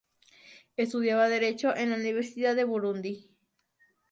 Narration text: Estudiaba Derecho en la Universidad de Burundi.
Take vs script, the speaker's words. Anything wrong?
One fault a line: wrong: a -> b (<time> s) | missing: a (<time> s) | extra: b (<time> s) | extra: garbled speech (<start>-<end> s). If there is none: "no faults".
no faults